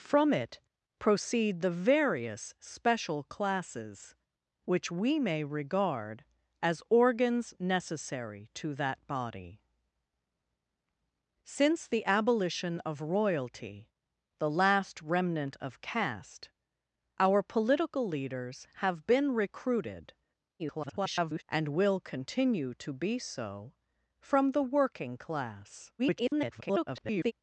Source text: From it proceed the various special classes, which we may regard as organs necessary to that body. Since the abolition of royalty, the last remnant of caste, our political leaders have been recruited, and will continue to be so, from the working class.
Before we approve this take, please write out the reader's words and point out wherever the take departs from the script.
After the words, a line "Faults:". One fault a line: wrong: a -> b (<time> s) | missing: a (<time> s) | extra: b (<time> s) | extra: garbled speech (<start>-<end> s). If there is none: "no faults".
From it proceed the various special classes, which we may regard as organs necessary to that body. Since the abolition of royalty, the last remnant of caste, our political leaders have been recruited, [garbled] and will continue to be so, from the working class. [garbled]
Faults:
extra: garbled speech (20.6-21.4 s)
extra: garbled speech (26.0-27.3 s)